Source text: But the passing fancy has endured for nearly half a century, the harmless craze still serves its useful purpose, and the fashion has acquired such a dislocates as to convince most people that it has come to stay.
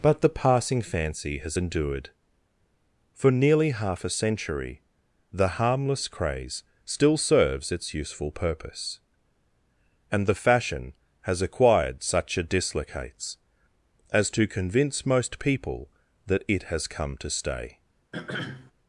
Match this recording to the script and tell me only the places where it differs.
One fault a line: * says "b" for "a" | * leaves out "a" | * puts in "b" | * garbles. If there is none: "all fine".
all fine